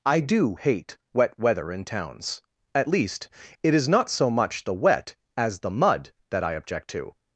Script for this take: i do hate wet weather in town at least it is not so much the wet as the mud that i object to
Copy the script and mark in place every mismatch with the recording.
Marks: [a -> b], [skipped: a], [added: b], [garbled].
i do hate wet weather in [town -> towns] at least it is not so much the wet as the mud that i object to